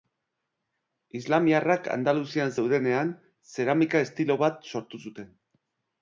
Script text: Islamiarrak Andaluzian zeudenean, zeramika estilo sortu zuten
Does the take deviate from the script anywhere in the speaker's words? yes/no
yes